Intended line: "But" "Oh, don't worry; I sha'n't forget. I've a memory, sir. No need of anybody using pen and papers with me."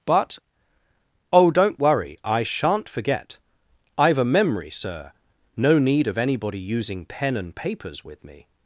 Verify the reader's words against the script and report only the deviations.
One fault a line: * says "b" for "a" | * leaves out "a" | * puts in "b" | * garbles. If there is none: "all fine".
all fine